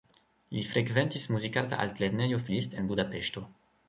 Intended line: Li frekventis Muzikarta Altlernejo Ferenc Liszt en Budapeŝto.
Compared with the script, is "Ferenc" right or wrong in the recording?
wrong